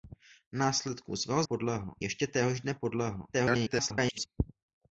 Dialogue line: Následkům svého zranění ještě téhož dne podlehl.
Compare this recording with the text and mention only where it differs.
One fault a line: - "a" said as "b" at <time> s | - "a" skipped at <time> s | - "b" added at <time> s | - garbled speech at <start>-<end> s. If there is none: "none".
- "zranění" said as "podlehl" at 1.4 s
- garbled speech at 3.3-4.3 s